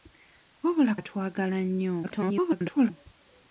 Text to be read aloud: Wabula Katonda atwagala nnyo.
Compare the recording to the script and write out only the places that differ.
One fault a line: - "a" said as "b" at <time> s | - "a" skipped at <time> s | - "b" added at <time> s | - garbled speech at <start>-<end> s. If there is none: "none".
- "Katonda" skipped at 0.9 s
- garbled speech at 2.0-2.9 s